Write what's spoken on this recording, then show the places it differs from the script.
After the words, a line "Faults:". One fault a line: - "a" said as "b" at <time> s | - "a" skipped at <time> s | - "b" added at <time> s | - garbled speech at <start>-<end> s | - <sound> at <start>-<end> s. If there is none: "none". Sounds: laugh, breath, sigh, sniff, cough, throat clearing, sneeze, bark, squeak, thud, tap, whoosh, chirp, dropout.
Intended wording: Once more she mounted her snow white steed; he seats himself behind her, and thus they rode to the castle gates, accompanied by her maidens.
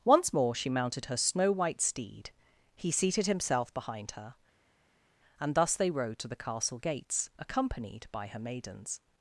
Once more she mounted her snow white steed; he seated himself behind her, and thus they rode to the castle gates, accompanied by her maidens.
Faults:
- "seats" said as "seated" at 2.9 s